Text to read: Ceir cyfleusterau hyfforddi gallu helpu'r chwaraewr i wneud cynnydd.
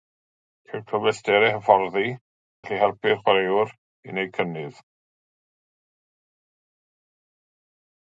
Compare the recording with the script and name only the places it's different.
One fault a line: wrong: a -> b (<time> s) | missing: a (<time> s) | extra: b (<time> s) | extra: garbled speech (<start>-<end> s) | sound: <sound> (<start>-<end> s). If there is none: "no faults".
no faults